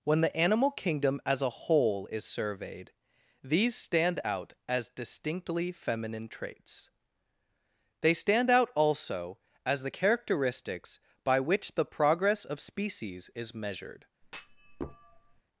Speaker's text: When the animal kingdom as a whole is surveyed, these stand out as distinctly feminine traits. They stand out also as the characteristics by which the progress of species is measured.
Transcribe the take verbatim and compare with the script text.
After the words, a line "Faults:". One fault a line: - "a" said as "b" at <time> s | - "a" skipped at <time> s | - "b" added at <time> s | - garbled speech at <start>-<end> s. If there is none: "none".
When the animal kingdom as a whole is surveyed, these stand out as distinctly feminine traits. They stand out also as the characteristics by which the progress of species is measured.
Faults:
none